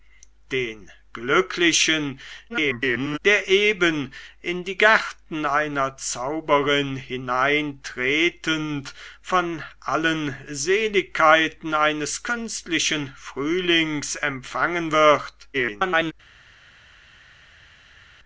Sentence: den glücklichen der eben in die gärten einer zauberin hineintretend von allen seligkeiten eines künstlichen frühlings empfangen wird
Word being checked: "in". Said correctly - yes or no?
yes